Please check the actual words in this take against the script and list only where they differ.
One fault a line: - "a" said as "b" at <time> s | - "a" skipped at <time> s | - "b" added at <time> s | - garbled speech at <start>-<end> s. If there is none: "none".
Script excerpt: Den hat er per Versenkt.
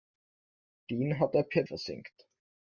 none